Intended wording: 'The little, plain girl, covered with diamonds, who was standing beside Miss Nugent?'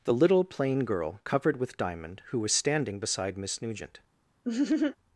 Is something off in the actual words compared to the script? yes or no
yes